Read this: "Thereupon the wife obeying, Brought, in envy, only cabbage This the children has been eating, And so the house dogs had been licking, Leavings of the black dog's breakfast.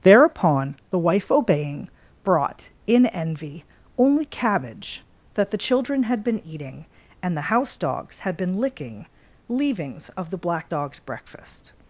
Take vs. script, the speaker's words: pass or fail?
fail